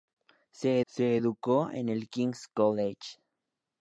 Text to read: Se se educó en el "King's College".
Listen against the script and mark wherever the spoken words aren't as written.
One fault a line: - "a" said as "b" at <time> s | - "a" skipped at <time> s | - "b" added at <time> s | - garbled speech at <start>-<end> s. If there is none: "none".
none